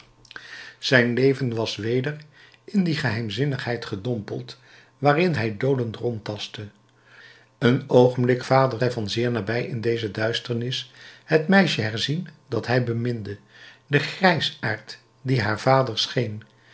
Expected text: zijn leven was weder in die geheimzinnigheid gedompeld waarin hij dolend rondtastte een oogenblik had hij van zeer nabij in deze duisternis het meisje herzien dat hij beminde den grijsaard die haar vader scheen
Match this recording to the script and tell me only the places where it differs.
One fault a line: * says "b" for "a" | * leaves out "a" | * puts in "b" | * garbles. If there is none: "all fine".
* says "vader" for "had"